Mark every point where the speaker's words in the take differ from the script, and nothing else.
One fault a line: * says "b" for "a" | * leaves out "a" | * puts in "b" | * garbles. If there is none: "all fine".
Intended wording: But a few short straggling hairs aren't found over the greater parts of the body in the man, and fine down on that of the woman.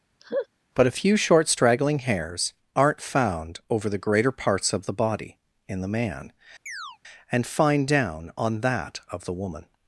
all fine